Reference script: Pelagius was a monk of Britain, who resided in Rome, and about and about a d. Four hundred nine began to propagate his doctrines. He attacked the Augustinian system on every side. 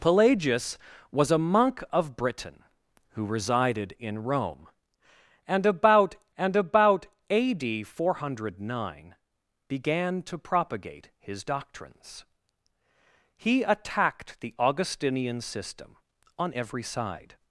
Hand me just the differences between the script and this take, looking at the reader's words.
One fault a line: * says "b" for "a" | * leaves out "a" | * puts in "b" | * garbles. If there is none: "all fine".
all fine